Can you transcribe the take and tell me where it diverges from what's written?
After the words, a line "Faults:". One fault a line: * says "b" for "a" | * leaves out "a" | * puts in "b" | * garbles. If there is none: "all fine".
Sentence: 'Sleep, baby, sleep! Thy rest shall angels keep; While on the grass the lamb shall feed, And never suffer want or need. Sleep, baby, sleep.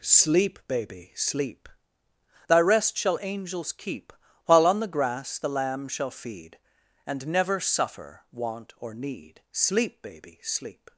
'Sleep, baby, sleep! Thy rest shall angels keep; While on the grass the lamb shall feed, And never suffer want or need. Sleep, baby, sleep.
Faults:
all fine